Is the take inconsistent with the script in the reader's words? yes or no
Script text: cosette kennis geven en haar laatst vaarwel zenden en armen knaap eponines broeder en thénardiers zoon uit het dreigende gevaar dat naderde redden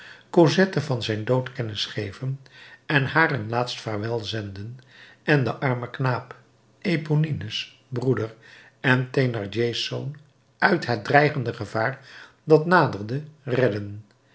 yes